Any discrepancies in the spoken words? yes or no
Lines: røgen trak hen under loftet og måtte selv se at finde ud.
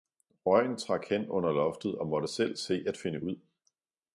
no